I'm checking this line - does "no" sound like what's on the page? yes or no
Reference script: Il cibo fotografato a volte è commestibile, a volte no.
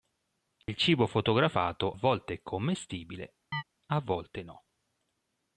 yes